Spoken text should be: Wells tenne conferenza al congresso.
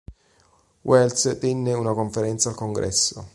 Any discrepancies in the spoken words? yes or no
yes